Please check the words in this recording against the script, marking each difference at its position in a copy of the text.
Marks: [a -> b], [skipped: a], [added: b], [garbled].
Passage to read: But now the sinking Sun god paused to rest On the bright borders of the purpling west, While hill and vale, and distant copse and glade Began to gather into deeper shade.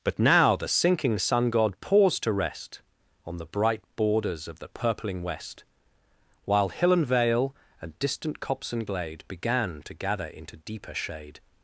But now the sinking Sun god paused to rest On the bright borders of the purpling west, While hill and vale, and distant copse and glade Began to gather into deeper shade.